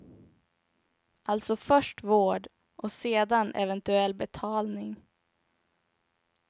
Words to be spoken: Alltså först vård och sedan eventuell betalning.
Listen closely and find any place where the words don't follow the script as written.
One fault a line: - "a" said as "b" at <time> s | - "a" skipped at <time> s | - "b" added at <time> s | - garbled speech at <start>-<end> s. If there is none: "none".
none